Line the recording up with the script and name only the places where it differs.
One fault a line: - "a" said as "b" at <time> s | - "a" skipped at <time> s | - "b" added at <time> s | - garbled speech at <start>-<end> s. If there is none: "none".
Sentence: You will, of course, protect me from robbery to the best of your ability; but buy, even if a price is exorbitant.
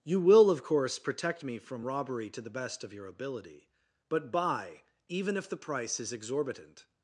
- "a" said as "the" at 5.5 s